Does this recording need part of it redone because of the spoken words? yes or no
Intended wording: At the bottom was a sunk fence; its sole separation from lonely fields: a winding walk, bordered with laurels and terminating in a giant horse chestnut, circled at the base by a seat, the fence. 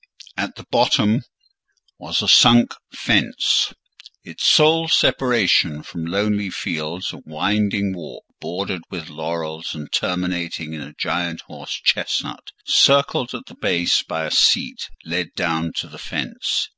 yes